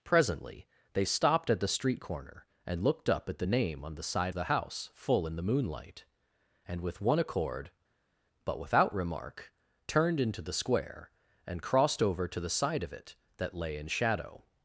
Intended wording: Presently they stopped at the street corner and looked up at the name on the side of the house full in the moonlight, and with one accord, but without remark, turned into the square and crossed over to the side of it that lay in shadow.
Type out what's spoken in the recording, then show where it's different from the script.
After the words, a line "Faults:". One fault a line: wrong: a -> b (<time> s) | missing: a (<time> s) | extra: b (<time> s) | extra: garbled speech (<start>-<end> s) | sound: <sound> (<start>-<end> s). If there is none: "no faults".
Presently they stopped at the street corner and looked up at the name on the side the house full in the moonlight, and with one accord, but without remark, turned into the square and crossed over to the side of it that lay in shadow.
Faults:
missing: of (4.3 s)